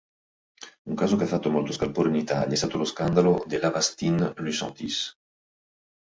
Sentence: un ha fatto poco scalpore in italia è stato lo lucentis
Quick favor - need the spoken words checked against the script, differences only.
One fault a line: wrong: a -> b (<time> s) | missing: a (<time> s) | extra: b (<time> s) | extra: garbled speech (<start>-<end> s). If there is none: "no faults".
extra: caso che (0.9 s)
wrong: poco -> molto (1.5 s)
extra: scandalo dell'avastin (2.8 s)